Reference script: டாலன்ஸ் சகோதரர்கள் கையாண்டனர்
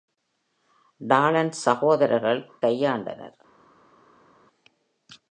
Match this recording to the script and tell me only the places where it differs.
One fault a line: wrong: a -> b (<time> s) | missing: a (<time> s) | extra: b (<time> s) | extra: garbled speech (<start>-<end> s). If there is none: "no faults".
no faults